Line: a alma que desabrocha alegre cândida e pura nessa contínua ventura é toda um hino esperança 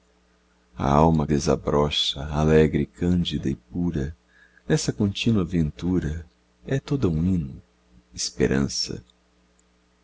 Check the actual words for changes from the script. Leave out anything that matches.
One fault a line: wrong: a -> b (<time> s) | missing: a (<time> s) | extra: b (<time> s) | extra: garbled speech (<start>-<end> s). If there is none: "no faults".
missing: que (1.3 s)